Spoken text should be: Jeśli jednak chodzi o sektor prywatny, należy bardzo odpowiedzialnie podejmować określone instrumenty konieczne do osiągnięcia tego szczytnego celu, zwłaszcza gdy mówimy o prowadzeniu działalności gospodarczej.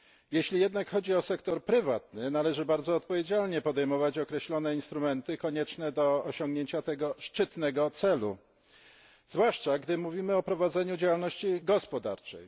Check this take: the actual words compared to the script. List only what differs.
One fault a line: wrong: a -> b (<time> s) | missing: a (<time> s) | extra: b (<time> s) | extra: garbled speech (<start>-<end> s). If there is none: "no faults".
no faults